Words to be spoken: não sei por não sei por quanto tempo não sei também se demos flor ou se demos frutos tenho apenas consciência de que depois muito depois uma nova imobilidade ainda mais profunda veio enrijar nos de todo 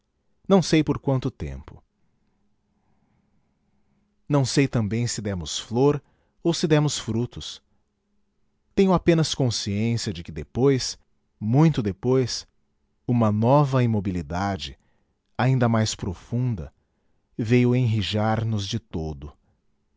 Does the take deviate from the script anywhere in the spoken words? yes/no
yes